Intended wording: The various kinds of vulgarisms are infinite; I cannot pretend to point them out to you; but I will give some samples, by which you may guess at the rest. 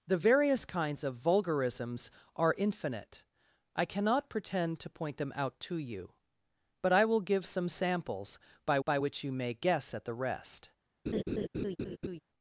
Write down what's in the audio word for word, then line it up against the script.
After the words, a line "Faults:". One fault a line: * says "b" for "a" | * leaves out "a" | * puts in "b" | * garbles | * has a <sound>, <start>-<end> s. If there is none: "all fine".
The various kinds of vulgarisms are infinite; I cannot pretend to point them out to you; but I will give some samples, by by which you may guess at the rest.
Faults:
* puts in "by"
* has a laugh, 11.1-12.2 s